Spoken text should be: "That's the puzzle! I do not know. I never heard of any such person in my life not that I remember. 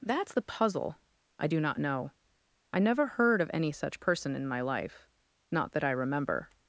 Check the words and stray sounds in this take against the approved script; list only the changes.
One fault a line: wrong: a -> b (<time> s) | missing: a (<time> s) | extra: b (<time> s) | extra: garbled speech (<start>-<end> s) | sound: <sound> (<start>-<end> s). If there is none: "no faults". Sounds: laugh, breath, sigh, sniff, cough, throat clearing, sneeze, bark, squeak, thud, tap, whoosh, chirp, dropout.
no faults